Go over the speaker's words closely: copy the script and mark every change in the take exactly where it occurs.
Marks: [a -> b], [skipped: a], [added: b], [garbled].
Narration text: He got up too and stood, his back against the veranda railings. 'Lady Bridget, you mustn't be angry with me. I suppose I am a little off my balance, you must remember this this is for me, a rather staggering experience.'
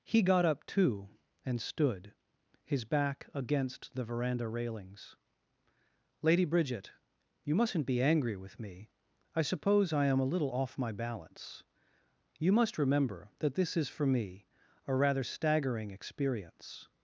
He got up too and stood, his back against the veranda railings. 'Lady Bridget, you mustn't be angry with me. I suppose I am a little off my balance, you must remember [this -> that] this is for me, a rather staggering experience.'